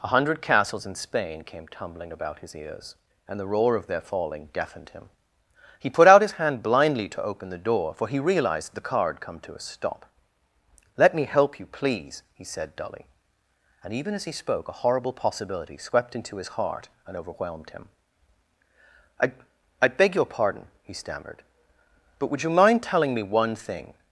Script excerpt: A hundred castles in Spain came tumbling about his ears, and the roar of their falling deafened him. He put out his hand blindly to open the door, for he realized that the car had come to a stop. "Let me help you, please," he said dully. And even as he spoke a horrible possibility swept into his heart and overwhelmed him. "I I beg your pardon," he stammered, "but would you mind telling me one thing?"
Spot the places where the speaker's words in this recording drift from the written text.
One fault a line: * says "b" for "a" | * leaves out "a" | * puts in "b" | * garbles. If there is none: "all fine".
* leaves out "that"